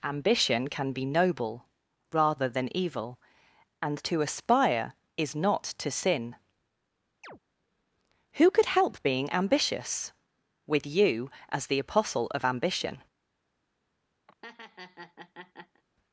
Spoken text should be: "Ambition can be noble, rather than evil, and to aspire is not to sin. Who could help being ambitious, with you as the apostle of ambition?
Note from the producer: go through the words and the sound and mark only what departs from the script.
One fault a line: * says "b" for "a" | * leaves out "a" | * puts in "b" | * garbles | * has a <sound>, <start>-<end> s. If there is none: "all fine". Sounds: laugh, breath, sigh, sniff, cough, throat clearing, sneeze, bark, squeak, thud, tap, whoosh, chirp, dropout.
* has a chirp, 7.2-7.4 s
* has a laugh, 14.3-15.8 s